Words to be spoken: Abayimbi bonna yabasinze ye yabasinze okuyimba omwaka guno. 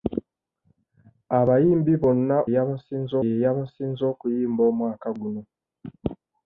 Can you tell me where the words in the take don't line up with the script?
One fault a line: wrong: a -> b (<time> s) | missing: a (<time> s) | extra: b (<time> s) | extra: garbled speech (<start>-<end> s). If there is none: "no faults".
no faults